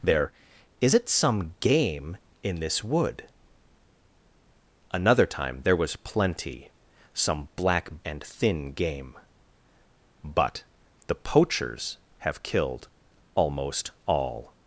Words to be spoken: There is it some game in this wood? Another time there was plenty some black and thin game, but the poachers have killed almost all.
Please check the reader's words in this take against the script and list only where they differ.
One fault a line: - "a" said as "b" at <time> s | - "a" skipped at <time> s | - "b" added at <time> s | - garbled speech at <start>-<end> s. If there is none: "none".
none